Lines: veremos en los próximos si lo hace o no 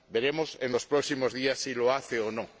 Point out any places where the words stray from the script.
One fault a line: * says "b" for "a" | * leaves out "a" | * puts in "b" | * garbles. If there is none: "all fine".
* puts in "días"